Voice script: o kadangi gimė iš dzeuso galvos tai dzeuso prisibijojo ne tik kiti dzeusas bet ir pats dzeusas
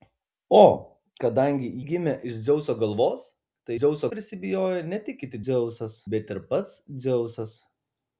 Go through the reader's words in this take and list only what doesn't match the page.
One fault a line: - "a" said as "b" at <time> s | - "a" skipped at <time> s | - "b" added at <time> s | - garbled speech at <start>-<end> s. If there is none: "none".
none